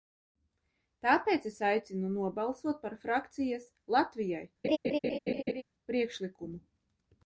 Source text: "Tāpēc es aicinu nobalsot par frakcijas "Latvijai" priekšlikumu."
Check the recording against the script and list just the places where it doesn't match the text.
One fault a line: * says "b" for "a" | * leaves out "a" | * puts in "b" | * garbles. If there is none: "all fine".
all fine